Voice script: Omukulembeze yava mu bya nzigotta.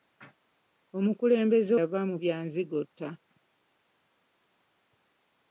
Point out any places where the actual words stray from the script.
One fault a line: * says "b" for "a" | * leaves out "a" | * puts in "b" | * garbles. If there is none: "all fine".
all fine